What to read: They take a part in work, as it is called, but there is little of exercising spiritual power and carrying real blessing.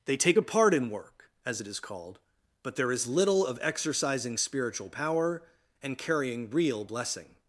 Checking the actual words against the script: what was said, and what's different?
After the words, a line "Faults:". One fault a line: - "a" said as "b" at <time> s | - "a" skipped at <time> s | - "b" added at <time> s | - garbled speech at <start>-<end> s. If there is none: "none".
They take a part in work, as it is called, but there is little of exercising spiritual power and carrying real blessing.
Faults:
none